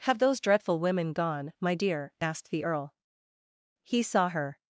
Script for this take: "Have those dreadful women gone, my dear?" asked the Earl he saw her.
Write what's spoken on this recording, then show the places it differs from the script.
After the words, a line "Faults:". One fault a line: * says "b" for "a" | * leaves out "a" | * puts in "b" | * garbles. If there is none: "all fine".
"Have those dreadful women gone, my dear?" asked the Earl he saw her.
Faults:
all fine